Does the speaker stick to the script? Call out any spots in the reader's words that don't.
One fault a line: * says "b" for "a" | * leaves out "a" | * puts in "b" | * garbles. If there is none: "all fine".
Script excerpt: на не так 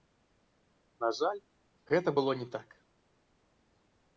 * puts in "жаль гэта было"